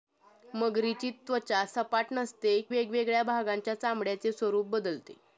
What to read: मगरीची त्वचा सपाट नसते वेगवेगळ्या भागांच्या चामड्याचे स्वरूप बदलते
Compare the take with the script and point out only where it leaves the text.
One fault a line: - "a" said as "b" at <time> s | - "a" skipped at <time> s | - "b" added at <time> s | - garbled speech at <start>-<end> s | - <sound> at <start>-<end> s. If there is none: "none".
none